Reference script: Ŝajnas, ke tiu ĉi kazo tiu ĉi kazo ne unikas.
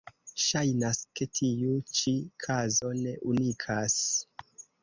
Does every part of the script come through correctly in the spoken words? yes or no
no